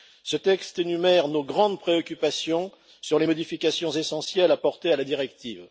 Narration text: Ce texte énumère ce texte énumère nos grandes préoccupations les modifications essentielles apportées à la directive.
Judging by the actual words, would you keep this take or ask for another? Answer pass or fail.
fail